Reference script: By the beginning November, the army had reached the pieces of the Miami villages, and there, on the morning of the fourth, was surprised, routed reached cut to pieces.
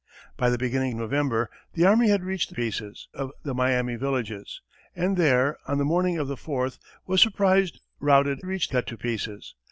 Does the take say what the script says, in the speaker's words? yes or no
yes